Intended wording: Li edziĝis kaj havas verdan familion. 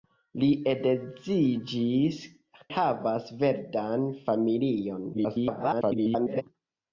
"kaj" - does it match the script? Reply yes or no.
no